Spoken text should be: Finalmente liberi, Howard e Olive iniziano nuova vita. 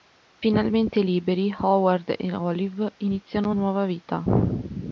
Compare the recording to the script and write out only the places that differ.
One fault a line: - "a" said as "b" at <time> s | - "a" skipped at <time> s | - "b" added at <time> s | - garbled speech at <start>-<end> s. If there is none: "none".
none